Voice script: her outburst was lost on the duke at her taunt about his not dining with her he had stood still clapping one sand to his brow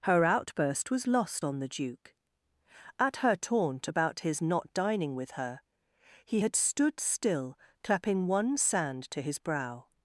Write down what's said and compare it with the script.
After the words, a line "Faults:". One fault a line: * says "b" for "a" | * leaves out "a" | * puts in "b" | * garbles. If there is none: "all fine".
her outburst was lost on the duke at her taunt about his not dining with her he had stood still clapping one sand to his brow
Faults:
all fine